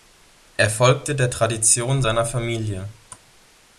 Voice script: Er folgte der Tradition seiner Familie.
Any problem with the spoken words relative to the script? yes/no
no